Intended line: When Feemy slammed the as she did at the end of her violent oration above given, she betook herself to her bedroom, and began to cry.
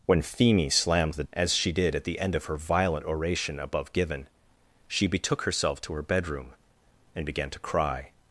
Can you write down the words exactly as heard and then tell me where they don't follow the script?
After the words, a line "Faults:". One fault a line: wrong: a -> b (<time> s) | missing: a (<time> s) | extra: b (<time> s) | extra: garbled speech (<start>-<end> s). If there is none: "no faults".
When Feemy slammed the as she did at the end of her violent oration above given, she betook herself to her bedroom, and began to cry.
Faults:
no faults